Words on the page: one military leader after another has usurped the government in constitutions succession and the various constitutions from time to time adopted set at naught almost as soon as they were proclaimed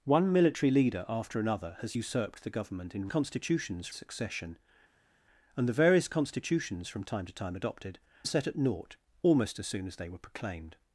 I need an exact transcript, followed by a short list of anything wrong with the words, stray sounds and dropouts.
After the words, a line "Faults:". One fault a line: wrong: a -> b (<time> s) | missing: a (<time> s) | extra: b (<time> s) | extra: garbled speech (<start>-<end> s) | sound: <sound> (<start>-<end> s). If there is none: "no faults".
one military leader after another has usurped the government in constitutions succession and the various constitutions from time to time adopted set at naught almost as soon as they were proclaimed
Faults:
no faults